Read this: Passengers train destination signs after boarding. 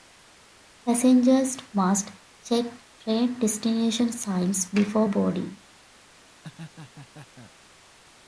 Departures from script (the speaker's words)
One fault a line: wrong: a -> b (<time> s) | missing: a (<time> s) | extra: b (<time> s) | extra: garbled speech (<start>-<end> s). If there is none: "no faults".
extra: must check (1.7 s)
wrong: after -> before (4.7 s)